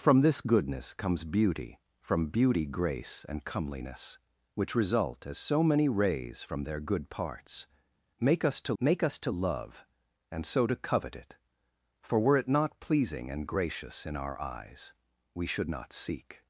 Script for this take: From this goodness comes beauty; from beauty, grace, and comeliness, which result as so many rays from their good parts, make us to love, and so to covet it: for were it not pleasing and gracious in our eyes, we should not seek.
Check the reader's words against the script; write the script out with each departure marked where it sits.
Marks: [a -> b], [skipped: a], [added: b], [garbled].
From this goodness comes beauty; from beauty, grace, and comeliness, which result as so many rays from their good parts, make us to [added: make us to] love, and so to covet it: for were it not pleasing and gracious in our eyes, we should not seek.